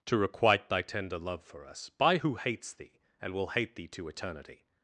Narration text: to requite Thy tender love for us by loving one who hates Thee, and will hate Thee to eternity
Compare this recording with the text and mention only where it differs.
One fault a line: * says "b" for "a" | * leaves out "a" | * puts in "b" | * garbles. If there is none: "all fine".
* leaves out "loving one"